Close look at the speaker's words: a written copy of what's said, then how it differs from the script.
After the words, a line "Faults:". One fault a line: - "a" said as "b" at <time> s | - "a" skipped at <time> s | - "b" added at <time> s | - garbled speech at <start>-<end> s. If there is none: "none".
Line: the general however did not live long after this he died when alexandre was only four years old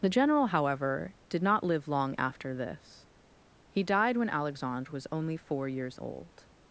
the general however did not live long after this he died when alexandre was only four years old
Faults:
none